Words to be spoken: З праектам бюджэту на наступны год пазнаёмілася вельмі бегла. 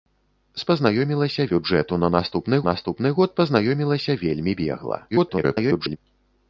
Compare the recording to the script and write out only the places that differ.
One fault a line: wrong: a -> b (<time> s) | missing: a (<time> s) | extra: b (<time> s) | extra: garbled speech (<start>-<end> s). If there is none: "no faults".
wrong: праектам -> пазнаёмілася (0.7 s)
extra: наступны (2.7 s)
extra: garbled speech (5.1-6.0 s)